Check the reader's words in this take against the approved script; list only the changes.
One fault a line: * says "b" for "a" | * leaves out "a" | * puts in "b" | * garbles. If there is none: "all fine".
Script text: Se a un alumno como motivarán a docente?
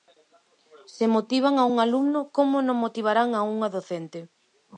* puts in "motivan"
* puts in "non"
* puts in "unha"